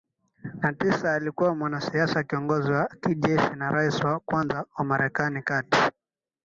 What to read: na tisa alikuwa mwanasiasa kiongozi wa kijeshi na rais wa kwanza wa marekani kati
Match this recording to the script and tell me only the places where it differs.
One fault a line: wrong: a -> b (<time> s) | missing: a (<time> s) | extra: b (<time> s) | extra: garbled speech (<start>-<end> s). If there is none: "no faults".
no faults